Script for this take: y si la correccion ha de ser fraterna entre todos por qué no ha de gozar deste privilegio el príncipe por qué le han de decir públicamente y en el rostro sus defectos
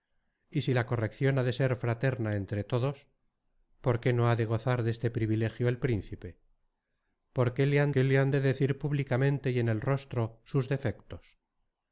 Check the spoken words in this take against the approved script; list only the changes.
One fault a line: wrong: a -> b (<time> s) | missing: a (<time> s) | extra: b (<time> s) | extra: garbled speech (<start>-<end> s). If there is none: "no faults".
extra: qué le han (7.9 s)